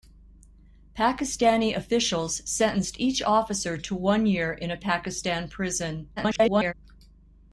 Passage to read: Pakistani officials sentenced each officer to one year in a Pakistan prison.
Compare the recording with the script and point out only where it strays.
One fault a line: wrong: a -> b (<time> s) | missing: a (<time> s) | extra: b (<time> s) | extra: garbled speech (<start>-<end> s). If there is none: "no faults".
extra: garbled speech (6.2-6.7 s)